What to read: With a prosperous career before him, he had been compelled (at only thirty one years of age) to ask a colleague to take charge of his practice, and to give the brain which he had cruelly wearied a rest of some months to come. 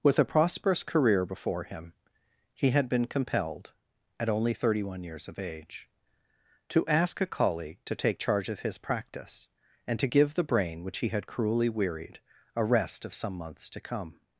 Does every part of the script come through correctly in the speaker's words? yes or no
yes